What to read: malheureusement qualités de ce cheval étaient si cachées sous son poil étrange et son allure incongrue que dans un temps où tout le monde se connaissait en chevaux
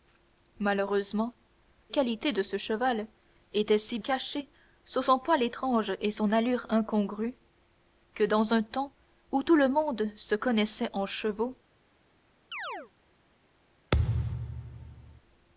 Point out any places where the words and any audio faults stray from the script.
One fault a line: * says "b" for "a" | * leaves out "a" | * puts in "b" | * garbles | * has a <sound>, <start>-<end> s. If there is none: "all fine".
* has a chirp, 12.5-12.9 s
* has a thud, 13.9-15.2 s